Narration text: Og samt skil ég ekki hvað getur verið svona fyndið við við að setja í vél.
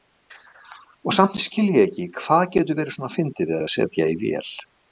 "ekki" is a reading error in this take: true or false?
false